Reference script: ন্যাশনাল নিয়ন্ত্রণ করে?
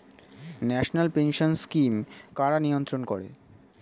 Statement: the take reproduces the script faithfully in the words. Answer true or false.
false